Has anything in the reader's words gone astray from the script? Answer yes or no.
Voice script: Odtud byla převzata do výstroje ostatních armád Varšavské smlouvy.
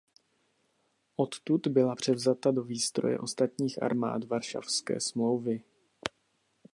no